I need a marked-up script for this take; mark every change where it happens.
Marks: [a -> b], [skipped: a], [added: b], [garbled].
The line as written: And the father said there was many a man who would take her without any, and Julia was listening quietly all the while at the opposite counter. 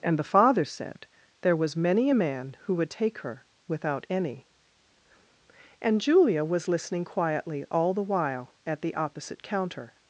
And the father said there was many a man who would take her without any, and Julia was listening quietly all the while at the opposite counter.